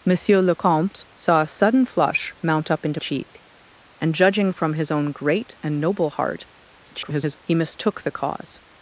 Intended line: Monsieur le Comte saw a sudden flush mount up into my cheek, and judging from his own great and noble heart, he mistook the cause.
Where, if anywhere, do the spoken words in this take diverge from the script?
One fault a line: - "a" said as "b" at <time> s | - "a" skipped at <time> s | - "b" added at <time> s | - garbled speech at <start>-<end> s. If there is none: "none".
- "my" skipped at 3.0 s
- garbled speech at 6.8-7.4 s